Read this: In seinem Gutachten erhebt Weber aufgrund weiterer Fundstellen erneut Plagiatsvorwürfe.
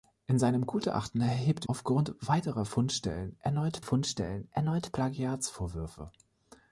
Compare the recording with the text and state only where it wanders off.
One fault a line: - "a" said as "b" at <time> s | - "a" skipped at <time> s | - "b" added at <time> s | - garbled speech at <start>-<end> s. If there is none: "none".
- "Weber" skipped at 1.7 s
- "Fundstellen erneut" added at 3.8 s